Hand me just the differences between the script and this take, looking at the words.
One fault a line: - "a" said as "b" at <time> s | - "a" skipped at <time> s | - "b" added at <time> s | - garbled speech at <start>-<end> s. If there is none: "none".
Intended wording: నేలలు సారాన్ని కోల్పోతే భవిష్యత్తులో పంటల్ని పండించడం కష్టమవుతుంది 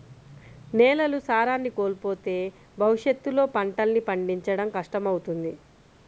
none